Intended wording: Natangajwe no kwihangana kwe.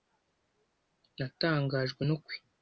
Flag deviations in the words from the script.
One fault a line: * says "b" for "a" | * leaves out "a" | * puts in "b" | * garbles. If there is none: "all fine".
* leaves out "kwihangana"